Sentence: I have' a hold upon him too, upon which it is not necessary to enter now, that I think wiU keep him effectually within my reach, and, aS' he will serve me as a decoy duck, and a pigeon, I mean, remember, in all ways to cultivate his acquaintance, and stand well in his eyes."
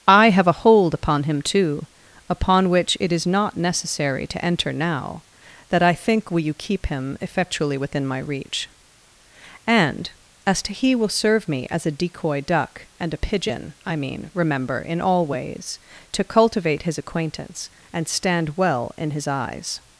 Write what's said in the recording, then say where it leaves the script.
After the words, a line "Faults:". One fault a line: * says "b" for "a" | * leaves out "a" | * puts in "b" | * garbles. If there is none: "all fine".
I have' a hold upon him too, upon which it is not necessary to enter now, that I think will you keep him effectually within my reach, and, aS' to he will serve me as a decoy duck, and a pigeon, I mean, remember, in all ways to cultivate his acquaintance, and stand well in his eyes."
Faults:
* says "will you" for "wiU"
* puts in "to"